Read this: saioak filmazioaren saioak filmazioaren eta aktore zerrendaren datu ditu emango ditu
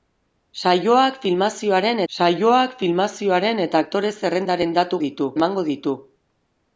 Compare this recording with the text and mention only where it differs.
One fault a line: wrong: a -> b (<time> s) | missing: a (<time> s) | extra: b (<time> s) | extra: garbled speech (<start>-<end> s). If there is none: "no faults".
no faults